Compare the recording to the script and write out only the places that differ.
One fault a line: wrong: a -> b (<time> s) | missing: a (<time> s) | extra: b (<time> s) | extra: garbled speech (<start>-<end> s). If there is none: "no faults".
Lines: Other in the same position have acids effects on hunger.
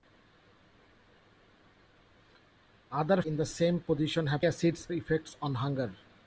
no faults